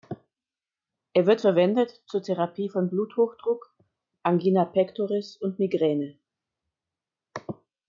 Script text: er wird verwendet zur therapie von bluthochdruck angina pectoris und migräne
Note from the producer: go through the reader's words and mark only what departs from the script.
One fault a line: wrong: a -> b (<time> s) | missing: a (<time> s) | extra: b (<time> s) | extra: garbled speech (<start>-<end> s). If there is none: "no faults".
no faults